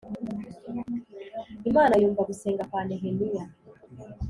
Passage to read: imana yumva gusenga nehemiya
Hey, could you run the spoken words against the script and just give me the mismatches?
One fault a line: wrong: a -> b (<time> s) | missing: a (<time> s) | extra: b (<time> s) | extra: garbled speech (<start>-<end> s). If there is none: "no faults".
extra: kwa (2.7 s)